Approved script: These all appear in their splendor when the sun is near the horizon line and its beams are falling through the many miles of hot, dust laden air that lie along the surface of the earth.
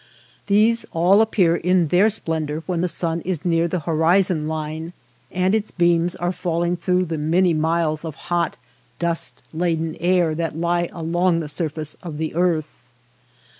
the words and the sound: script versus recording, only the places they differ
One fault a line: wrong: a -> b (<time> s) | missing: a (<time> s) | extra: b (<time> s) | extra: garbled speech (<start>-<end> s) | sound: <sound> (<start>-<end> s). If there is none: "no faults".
no faults